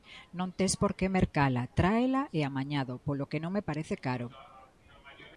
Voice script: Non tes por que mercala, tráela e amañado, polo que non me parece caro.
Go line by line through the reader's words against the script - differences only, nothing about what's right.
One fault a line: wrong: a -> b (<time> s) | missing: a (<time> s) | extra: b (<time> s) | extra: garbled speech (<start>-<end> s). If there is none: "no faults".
no faults